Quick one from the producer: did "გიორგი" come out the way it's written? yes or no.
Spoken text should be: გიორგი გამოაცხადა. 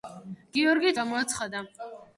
yes